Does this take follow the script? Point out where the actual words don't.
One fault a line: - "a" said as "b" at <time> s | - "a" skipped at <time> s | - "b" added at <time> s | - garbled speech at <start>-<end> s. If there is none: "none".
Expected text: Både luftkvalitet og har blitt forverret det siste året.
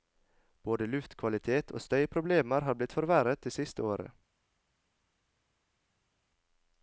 - "støyproblemer" added at 1.8 s